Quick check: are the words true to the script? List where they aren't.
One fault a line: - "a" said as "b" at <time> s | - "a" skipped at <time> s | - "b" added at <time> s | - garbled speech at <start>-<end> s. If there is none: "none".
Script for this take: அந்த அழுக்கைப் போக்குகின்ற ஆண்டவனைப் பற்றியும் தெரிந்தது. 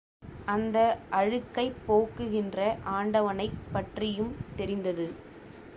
none